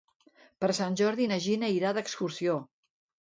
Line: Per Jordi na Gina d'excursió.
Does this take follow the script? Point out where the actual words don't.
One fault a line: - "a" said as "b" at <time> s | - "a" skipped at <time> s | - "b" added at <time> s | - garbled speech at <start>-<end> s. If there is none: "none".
- "Sant" added at 0.8 s
- "irà" added at 1.8 s